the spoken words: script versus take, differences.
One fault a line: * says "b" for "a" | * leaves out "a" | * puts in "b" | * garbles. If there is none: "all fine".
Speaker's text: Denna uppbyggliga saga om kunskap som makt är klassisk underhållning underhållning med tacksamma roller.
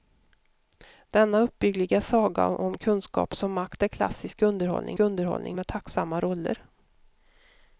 all fine